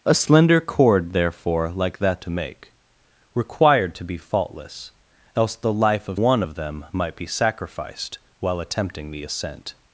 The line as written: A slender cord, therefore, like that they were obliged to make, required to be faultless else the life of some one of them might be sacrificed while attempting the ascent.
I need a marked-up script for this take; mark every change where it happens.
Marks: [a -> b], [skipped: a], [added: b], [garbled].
A slender cord, therefore, like that [skipped: they were obliged] to make, required to be faultless else the life of [skipped: some] one of them might be sacrificed while attempting the ascent.